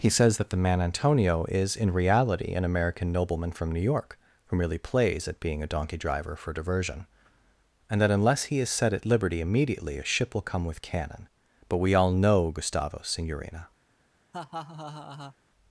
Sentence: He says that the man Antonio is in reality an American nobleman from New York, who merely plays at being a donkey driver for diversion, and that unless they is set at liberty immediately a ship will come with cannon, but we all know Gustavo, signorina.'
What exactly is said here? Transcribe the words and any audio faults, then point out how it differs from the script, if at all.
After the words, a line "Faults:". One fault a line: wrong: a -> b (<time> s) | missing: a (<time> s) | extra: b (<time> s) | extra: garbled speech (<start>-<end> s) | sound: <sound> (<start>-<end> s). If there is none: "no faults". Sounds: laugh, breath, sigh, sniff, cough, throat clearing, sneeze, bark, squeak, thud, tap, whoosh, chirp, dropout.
He says that the man Antonio is in reality an American nobleman from New York, who merely plays at being a donkey driver for diversion, and that unless he is set at liberty immediately a ship will come with cannon, but we all know Gustavo, signorina.'
Faults:
wrong: they -> he (8.4 s)
sound: laugh (14.3-15.4 s)